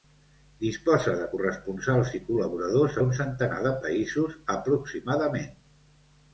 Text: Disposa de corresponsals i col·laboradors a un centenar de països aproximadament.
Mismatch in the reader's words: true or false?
false